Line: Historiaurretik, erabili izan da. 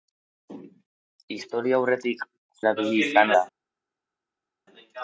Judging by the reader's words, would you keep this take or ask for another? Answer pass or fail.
pass